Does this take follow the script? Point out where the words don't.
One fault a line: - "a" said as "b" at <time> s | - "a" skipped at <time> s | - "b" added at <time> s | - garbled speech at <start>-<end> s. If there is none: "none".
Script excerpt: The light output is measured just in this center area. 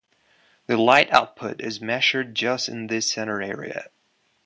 none